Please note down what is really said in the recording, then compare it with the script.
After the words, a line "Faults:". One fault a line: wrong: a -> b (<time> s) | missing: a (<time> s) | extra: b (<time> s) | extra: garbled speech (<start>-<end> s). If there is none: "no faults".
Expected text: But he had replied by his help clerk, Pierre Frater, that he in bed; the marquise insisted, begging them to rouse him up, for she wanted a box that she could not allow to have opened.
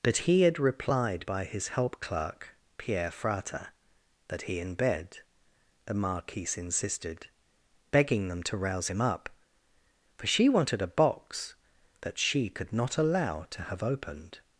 But he had replied by his help clerk, Pierre Frater, that he in bed; the marquise insisted, begging them to rouse him up, for she wanted a box that she could not allow to have opened.
Faults:
no faults